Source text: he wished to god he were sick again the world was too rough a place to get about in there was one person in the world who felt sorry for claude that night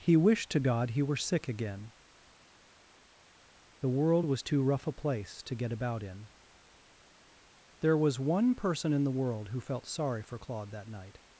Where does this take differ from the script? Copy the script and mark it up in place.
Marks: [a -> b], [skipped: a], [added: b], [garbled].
he wished to god he were sick again the world was too rough a place to get about in there was one person in the world who felt sorry for claude that night